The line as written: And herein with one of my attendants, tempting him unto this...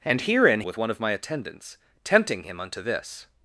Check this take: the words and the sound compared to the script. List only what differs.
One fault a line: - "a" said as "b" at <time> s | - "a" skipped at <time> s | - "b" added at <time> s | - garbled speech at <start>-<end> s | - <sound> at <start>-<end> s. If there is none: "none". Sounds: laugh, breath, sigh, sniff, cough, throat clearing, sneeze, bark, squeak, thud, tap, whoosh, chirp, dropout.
none